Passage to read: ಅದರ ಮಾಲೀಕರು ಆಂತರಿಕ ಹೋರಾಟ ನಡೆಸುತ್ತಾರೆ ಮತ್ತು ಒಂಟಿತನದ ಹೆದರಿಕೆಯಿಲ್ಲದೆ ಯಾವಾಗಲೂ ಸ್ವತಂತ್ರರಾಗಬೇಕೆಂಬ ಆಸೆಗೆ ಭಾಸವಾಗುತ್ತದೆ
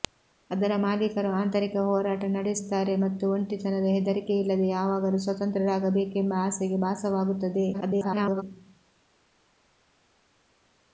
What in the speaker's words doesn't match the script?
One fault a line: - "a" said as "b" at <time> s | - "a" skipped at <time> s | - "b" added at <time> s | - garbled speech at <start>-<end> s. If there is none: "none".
- garbled speech at 7.7-8.4 s